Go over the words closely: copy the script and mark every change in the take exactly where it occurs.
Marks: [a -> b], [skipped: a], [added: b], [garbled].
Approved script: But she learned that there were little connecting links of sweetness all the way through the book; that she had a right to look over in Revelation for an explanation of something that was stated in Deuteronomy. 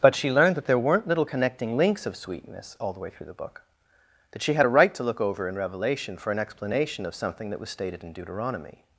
But she learned that there [were -> weren't] little connecting links of sweetness all the way through the book; that she had a right to look over in Revelation for an explanation of something that was stated in Deuteronomy.